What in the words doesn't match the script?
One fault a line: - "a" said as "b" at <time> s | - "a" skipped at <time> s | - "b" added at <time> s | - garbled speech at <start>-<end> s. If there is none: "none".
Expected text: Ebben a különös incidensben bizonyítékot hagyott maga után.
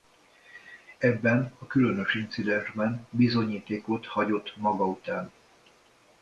none